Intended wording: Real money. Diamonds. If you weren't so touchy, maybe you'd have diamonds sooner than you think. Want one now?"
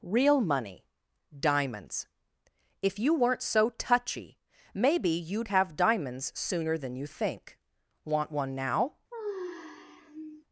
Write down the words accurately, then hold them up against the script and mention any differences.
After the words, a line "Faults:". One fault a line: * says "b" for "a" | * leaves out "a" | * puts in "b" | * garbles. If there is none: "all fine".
Real money. Diamonds. If you weren't so touchy, maybe you'd have diamonds sooner than you think. Want one now?"
Faults:
all fine